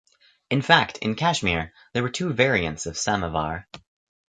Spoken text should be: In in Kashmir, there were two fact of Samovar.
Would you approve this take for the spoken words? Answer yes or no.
no